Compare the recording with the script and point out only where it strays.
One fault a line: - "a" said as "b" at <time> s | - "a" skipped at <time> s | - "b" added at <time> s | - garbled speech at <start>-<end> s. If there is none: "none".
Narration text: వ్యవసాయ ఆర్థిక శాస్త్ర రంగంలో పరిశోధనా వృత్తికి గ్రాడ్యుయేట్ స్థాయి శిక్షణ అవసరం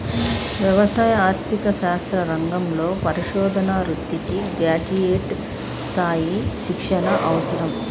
none